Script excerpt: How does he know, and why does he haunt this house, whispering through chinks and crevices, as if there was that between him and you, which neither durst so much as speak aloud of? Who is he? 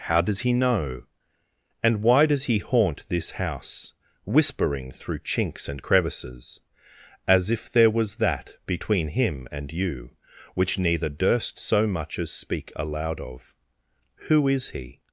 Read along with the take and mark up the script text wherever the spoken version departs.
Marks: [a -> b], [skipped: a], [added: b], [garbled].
How does he know, and why does he haunt this house, whispering through chinks and crevices, as if there was that between him and you, which neither durst so much as speak aloud of? Who is he?